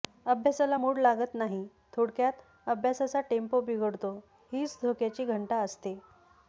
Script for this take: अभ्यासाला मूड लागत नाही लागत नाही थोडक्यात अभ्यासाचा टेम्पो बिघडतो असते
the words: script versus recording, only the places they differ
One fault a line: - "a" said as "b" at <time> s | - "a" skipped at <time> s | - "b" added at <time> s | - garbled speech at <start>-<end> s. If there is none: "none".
- "लागत नाही" skipped at 1.7 s
- "हीच धोक्याची घंटा" added at 4.5 s